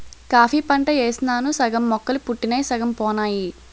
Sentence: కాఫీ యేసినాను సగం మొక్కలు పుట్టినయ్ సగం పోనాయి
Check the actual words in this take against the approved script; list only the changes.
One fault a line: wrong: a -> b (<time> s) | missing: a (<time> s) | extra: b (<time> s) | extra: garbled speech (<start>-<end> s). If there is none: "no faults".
extra: పంట (0.7 s)